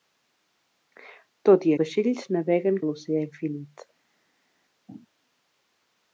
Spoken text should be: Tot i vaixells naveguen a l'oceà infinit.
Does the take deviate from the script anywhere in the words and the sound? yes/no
no